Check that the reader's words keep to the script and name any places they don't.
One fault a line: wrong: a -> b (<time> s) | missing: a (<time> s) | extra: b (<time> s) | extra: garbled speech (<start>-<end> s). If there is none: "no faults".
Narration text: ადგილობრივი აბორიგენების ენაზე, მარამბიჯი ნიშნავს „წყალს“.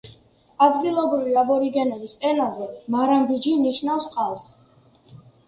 no faults